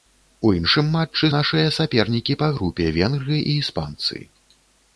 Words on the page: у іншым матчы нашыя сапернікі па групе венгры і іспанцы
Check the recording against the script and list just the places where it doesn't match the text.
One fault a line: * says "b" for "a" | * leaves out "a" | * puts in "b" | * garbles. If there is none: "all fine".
all fine